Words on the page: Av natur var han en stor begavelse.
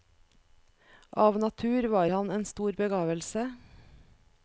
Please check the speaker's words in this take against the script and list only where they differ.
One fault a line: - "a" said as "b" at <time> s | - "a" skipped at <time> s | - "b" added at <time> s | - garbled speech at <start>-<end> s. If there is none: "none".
none